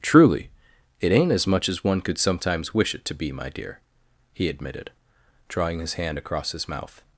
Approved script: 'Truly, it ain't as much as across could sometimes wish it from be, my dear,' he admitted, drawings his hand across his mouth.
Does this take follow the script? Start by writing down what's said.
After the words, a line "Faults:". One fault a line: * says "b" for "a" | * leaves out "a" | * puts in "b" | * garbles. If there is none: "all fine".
'Truly, it ain't as much as one could sometimes wish it to be, my dear,' he admitted, drawing his hand across his mouth.
Faults:
* says "one" for "across"
* says "to" for "from"
* says "drawing" for "drawings"